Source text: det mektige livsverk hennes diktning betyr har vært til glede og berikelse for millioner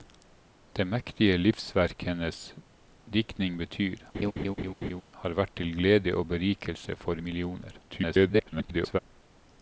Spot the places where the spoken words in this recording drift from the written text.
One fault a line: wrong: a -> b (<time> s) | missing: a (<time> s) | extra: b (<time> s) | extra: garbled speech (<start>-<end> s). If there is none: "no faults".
extra: garbled speech (7.9-9.0 s)